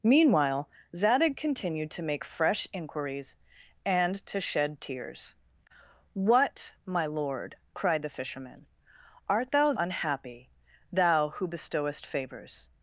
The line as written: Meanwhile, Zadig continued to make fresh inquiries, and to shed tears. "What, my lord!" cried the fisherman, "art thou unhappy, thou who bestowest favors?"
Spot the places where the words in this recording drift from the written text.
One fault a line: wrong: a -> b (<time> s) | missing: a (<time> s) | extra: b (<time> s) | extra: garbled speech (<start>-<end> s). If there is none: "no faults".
no faults